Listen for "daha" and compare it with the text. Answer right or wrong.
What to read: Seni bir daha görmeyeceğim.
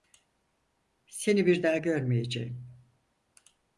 right